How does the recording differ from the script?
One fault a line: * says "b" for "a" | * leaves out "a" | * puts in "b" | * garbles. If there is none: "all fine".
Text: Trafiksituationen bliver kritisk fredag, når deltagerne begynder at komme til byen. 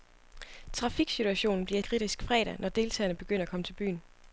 all fine